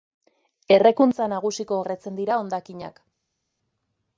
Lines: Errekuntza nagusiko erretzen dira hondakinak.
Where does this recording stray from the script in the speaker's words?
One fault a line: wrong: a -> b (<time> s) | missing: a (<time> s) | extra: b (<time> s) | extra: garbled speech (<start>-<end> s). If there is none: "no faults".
no faults